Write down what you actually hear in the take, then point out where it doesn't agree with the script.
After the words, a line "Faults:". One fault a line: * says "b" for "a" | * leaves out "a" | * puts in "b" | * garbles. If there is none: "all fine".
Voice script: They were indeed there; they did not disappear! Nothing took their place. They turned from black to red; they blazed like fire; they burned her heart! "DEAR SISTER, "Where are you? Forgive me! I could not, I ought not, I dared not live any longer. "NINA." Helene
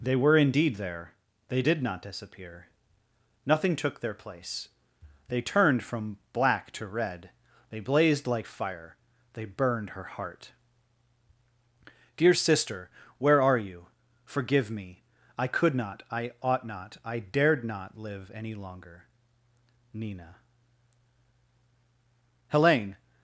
They were indeed there; they did not disappear! Nothing took their place. They turned from black to red; they blazed like fire; they burned her heart! "DEAR SISTER, "Where are you? Forgive me! I could not, I ought not, I dared not live any longer. "NINA." Helene
Faults:
all fine